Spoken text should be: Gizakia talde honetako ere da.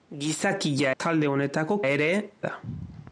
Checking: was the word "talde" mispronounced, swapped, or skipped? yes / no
no